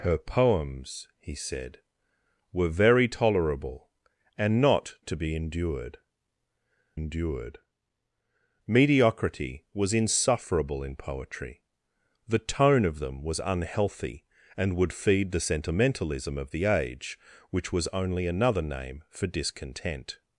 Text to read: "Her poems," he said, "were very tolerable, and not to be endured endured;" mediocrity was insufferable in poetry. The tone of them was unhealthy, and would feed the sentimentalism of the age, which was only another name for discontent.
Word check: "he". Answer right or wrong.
right